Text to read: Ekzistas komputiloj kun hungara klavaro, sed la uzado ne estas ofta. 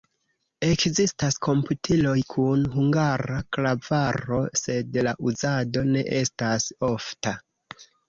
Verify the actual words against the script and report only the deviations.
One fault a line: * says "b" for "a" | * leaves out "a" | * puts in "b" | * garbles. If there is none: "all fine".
all fine